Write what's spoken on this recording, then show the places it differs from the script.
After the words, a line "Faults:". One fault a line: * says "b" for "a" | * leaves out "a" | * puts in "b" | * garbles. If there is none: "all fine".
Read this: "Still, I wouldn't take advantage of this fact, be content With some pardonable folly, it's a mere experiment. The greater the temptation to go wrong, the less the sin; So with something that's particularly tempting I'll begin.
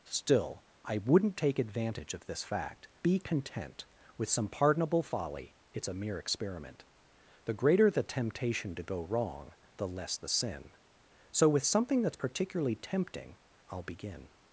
"Still, I wouldn't take advantage of this fact, be content With some pardonable folly, it's a mere experiment. The greater the temptation to go wrong, the less the sin; So with something that's particularly tempting I'll begin.
Faults:
all fine